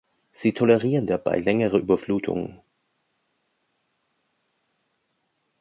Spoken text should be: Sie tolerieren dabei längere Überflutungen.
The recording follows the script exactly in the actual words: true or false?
true